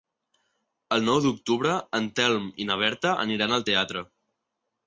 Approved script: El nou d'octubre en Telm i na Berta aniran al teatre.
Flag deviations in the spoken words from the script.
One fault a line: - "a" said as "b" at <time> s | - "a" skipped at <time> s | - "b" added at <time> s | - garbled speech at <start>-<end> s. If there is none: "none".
none